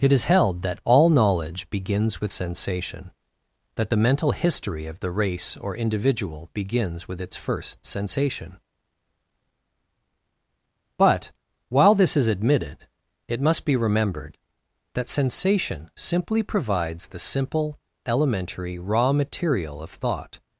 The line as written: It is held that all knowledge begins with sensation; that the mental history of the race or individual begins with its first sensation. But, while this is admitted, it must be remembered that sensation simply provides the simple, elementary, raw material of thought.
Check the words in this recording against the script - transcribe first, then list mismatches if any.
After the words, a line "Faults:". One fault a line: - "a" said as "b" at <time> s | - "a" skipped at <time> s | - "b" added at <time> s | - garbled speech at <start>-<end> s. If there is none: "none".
It is held that all knowledge begins with sensation; that the mental history of the race or individual begins with its first sensation. But, while this is admitted, it must be remembered that sensation simply provides the simple, elementary, raw material of thought.
Faults:
none